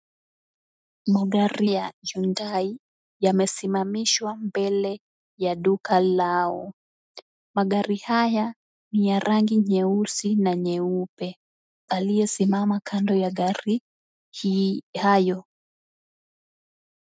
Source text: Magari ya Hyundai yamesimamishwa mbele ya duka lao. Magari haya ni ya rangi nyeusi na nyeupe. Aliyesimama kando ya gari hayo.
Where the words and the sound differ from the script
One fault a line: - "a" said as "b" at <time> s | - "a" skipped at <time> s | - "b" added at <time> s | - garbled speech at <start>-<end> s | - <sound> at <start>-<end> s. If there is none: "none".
none